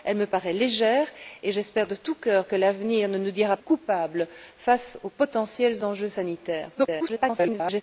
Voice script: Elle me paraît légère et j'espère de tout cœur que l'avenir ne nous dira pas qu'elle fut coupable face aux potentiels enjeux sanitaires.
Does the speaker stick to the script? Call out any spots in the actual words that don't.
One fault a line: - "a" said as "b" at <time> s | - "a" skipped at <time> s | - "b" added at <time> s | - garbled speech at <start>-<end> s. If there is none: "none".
- "pas qu'elle fut" skipped at 3.6 s
- garbled speech at 6.7-7.8 s